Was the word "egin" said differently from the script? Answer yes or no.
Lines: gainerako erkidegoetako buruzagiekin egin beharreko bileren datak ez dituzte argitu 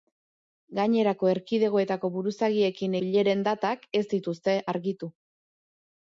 yes